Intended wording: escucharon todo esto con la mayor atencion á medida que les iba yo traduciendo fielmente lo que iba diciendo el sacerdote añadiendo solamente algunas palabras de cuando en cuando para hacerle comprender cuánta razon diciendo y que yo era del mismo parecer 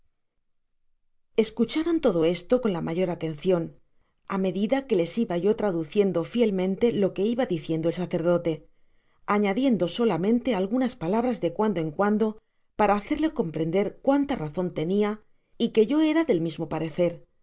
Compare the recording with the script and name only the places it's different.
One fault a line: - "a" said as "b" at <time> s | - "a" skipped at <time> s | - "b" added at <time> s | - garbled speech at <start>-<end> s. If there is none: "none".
- "diciendo" said as "tenia" at 14.8 s